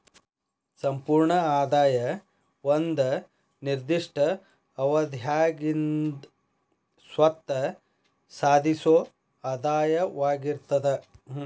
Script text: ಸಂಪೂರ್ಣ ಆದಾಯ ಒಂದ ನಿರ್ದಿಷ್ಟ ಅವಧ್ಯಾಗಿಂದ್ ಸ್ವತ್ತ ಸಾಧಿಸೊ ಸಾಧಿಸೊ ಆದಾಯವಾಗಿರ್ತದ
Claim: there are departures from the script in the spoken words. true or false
true